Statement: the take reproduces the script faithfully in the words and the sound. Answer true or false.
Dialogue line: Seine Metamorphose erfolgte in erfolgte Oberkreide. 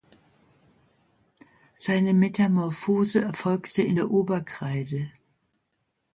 false